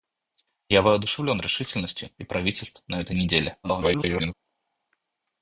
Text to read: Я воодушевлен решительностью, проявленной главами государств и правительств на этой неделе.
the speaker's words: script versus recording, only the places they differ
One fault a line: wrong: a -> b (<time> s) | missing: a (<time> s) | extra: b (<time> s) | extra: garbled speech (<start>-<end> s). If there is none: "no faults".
missing: проявленной главами государств (2.1 s)
extra: garbled speech (3.6-4.3 s)